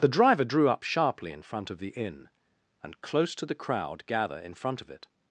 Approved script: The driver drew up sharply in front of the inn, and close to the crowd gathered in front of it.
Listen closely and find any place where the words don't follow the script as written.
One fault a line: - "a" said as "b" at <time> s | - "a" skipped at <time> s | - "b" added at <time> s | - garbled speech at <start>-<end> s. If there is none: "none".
- "gathered" said as "gather" at 4.1 s